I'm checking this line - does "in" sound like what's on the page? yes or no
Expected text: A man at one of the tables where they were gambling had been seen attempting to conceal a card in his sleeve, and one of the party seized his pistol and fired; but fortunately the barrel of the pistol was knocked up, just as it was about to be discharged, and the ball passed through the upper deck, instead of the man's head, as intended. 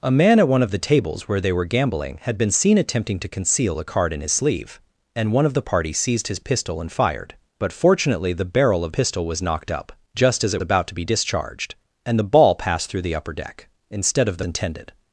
yes